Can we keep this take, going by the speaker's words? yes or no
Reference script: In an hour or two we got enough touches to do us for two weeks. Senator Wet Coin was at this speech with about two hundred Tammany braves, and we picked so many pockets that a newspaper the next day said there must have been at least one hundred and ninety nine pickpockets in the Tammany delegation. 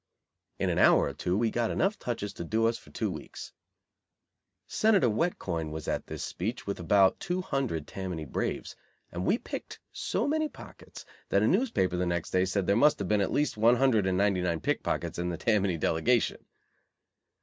yes